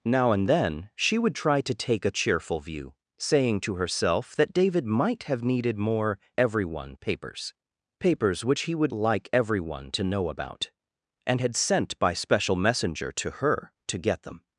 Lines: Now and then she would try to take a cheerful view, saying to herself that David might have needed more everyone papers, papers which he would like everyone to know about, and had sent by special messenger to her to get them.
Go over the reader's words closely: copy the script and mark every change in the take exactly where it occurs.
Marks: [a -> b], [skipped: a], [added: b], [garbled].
Now and then she would try to take a cheerful view, saying to herself that David might have needed more everyone papers, papers which he would like everyone to know about, and had sent by special messenger to her to get them.